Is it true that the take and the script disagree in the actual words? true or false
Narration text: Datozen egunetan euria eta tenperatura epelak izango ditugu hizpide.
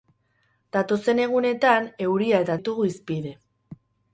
true